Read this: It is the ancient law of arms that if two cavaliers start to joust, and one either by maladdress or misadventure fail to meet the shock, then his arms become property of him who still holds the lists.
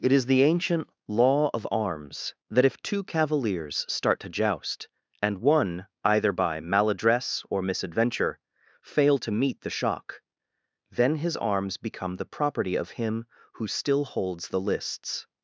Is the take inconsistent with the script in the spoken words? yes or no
yes